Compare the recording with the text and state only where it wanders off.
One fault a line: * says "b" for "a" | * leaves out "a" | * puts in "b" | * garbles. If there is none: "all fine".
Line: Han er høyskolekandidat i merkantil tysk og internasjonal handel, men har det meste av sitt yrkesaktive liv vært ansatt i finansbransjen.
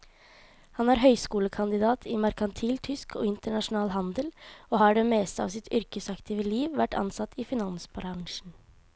* says "og" for "men"